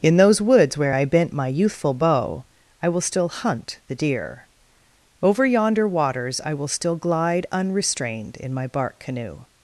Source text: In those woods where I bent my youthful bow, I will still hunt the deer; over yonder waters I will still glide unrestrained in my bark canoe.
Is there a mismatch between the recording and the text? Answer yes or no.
no